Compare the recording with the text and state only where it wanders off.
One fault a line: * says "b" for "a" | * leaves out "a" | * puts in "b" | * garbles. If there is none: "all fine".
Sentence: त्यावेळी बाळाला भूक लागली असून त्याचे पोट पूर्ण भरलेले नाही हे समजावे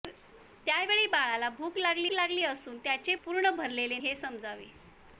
* puts in "लागली"
* leaves out "पोट"
* leaves out "नाही"